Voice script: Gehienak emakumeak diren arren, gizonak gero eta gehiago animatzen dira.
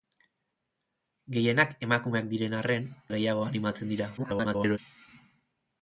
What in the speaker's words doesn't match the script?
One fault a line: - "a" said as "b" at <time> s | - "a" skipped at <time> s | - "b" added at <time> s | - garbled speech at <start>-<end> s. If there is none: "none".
- "gizonak gero eta" skipped at 2.9 s
- garbled speech at 4.2-4.8 s